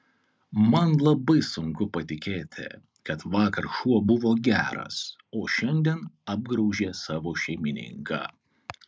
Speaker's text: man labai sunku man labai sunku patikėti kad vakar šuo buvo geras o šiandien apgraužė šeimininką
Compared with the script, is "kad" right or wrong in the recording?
right